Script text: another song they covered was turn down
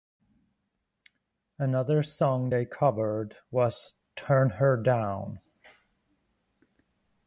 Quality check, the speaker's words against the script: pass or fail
fail